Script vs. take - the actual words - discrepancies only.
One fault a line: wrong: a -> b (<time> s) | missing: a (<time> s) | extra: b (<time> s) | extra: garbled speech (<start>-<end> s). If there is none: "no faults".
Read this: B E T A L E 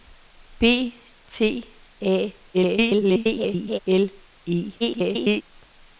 missing: E (0.9 s)
extra: garbled speech (2.5-3.8 s)
extra: garbled speech (4.8-5.4 s)